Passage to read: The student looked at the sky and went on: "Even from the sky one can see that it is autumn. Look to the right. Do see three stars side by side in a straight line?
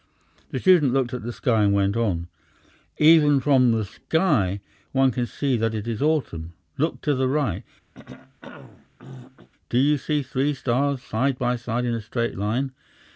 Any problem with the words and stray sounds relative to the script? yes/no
yes